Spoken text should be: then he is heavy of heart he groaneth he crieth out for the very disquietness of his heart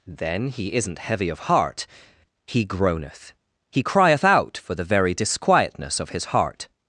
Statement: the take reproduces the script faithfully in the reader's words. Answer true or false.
false